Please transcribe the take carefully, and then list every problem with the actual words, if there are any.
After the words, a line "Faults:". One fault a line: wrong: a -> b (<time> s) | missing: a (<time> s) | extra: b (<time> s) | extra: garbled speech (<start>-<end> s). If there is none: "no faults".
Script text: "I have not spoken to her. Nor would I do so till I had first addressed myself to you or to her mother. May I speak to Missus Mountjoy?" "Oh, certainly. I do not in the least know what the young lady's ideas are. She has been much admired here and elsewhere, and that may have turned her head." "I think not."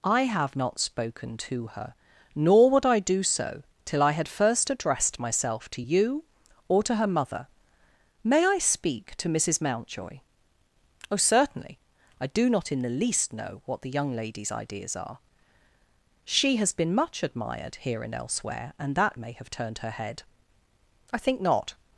"I have not spoken to her. Nor would I do so till I had first addressed myself to you or to her mother. May I speak to Missus Mountjoy?" "Oh, certainly. I do not in the least know what the young lady's ideas are. She has been much admired here and elsewhere, and that may have turned her head." "I think not."
Faults:
no faults